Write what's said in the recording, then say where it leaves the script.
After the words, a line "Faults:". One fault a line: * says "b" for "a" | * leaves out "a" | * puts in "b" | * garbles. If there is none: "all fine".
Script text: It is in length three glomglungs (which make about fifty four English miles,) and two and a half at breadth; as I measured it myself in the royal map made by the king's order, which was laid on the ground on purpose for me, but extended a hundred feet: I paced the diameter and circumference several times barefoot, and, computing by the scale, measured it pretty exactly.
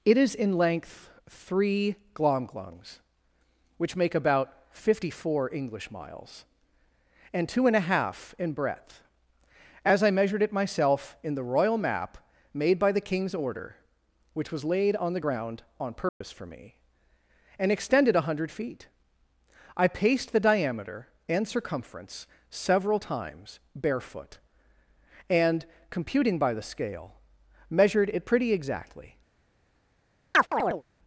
It is in length three glomglungs (which make about fifty four English miles,) and two and a half in breadth; as I measured it myself in the royal map made by the king's order, which was laid on the ground on purpose for me, and extended a hundred feet: I paced the diameter and circumference several times barefoot, and, computing by the scale, measured it pretty exactly.
Faults:
* says "in" for "at"
* says "and" for "but"